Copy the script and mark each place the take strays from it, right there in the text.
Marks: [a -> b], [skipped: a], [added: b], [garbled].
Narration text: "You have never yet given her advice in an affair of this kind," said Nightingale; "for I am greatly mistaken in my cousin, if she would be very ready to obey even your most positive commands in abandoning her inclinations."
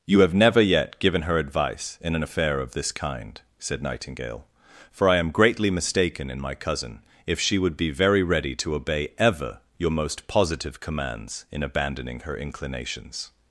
"You have never yet given her advice in an affair of this kind," said Nightingale; "for I am greatly mistaken in my cousin, if she would be very ready to obey [even -> ever] your most positive commands in abandoning her inclinations."